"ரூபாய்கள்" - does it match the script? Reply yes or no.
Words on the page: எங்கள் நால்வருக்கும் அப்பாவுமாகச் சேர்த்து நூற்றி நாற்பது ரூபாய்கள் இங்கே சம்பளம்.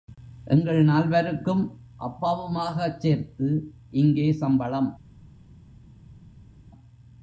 no